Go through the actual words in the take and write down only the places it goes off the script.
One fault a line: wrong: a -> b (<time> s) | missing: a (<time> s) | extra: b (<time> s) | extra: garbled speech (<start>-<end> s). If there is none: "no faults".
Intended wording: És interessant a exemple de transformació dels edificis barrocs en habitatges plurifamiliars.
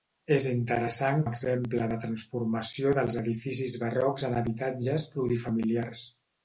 no faults